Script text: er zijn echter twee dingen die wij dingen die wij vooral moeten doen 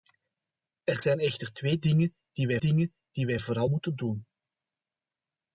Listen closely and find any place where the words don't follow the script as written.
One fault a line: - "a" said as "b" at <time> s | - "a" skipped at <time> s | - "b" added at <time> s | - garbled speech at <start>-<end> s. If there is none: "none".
none